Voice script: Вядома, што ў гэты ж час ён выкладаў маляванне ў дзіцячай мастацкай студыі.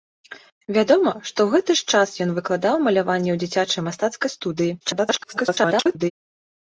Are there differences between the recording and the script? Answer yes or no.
yes